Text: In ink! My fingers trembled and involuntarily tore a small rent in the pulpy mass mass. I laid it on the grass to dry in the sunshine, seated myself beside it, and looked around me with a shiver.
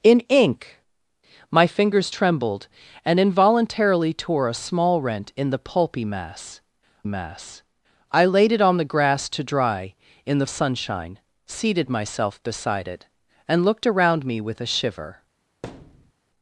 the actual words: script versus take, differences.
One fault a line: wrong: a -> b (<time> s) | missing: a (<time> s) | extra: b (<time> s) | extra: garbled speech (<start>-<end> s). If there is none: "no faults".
no faults